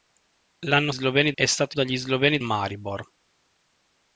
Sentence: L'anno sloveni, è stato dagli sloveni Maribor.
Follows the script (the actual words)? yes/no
yes